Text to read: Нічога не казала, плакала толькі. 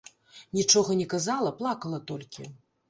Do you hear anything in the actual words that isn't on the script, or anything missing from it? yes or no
no